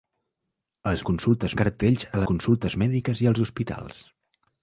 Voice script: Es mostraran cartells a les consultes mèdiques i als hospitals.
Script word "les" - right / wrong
wrong